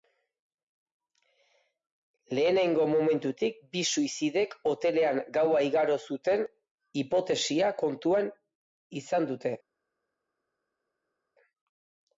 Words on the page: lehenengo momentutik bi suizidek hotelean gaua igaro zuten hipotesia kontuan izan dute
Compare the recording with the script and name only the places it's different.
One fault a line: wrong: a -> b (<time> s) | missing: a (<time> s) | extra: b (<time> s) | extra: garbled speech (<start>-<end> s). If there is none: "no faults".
no faults